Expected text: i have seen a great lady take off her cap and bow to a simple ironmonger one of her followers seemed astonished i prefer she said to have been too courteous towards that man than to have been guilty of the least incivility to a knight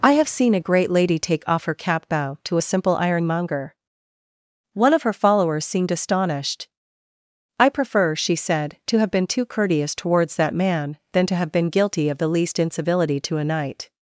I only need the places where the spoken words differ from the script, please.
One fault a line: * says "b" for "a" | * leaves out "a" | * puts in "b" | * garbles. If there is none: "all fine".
* leaves out "and"